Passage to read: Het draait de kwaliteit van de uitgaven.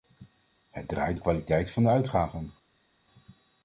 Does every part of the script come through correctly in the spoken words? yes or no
yes